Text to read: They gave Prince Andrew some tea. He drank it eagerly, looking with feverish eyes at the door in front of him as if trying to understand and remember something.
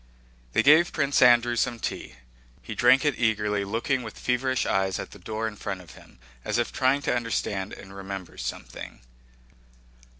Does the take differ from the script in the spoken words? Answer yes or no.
no